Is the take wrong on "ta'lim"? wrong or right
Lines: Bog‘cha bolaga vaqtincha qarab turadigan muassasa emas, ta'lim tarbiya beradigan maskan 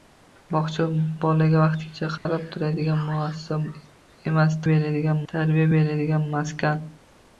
wrong